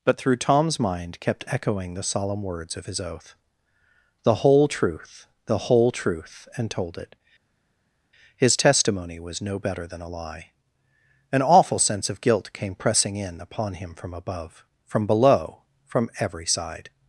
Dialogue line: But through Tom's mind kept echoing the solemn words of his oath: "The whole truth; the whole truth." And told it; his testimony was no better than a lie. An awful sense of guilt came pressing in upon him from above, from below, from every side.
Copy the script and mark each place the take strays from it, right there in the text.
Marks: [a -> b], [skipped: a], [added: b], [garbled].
But through Tom's mind kept echoing the solemn words of his oath: "The whole truth; the whole truth." And told it; his testimony was no better than a lie. An awful sense of guilt came pressing in upon him from above, from below, from every side.